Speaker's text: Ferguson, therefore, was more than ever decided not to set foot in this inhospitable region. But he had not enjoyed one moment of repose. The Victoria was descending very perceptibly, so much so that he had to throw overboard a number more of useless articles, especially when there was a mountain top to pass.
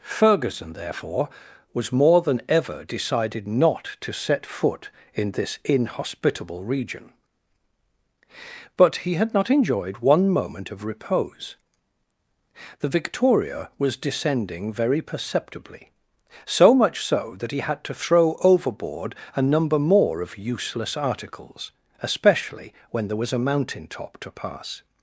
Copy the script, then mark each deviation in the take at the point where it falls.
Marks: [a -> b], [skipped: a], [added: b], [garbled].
Ferguson, therefore, was more than ever decided not to set foot in this inhospitable region. But he had not enjoyed one moment of repose. The Victoria was descending very perceptibly, so much so that he had to throw overboard a number more of useless articles, especially when there was a mountain top to pass.